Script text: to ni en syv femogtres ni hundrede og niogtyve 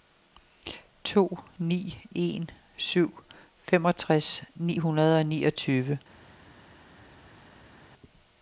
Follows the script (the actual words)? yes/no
yes